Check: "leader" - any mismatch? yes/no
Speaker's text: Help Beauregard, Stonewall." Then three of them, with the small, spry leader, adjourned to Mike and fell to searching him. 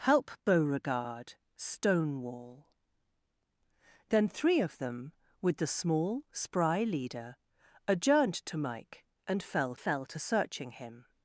no